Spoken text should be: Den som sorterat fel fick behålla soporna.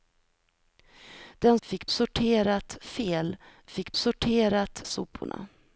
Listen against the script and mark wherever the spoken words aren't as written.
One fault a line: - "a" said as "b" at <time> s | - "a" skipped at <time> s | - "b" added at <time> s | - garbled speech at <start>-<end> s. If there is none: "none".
- "som" said as "fick" at 1.6 s
- "behålla" said as "sorterat" at 3.9 s